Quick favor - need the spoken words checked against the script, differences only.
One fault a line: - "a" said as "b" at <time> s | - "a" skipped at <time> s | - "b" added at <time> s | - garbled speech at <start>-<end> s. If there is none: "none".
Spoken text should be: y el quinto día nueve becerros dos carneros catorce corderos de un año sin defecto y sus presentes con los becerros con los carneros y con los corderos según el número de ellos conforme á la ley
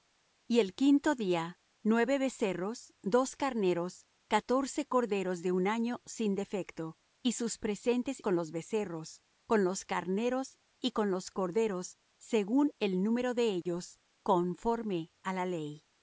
none